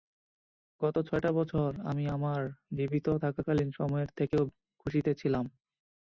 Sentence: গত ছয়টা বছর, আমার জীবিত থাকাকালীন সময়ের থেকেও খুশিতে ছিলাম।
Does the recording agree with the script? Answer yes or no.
no